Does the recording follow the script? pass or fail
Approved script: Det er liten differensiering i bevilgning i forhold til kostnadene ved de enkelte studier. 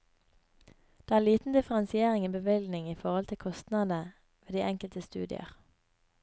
pass